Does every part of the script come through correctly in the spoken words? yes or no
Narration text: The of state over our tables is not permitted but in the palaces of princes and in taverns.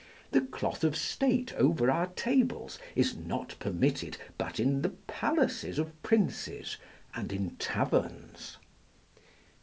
no